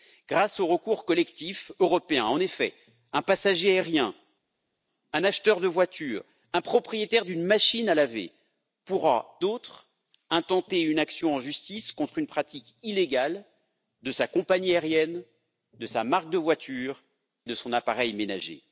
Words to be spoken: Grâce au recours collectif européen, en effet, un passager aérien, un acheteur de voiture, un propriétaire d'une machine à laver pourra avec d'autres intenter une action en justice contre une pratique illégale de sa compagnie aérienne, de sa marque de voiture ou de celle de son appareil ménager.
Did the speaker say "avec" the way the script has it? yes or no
no